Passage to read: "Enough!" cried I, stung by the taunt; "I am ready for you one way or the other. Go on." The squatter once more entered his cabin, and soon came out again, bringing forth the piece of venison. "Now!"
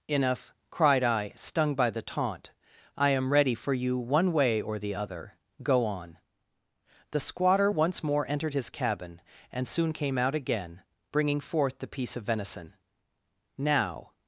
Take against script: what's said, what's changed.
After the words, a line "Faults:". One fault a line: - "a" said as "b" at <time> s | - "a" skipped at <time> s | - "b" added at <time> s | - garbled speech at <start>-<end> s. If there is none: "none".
"Enough!" cried I, stung by the taunt; "I am ready for you one way or the other. Go on." The squatter once more entered his cabin, and soon came out again, bringing forth the piece of venison. "Now!"
Faults:
none